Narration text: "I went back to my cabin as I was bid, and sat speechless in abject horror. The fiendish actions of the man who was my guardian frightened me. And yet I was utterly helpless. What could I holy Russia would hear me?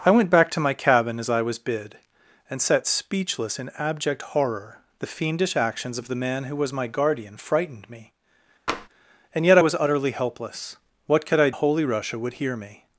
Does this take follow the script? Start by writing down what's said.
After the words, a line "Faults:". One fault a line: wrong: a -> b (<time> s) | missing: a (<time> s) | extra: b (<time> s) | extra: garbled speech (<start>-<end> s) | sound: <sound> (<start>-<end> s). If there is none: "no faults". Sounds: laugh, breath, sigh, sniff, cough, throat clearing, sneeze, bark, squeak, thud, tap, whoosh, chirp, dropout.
"I went back to my cabin as I was bid, and sat speechless in abject horror. The fiendish actions of the man who was my guardian frightened me. And yet I was utterly helpless. What could I holy Russia would hear me?
Faults:
sound: tap (8.7-8.9 s)